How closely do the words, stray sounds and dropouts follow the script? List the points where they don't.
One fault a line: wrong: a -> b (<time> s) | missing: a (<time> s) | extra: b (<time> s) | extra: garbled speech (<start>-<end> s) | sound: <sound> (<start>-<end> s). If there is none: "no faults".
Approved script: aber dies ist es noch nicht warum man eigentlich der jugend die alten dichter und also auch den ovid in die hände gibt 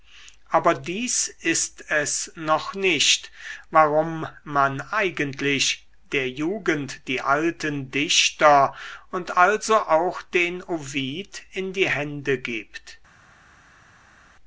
no faults